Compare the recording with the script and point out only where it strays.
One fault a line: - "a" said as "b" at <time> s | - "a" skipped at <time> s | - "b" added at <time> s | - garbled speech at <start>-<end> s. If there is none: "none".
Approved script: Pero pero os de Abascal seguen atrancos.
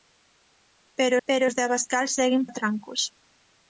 none